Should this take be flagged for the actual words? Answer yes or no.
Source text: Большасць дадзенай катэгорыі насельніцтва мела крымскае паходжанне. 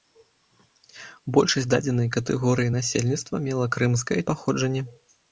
no